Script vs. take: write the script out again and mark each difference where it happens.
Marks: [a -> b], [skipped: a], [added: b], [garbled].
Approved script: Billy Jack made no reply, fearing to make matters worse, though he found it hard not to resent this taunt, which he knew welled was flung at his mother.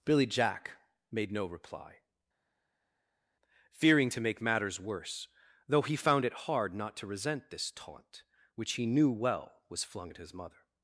Billy Jack made no reply, fearing to make matters worse, though he found it hard not to resent this taunt, which he knew [welled -> well] was flung at his mother.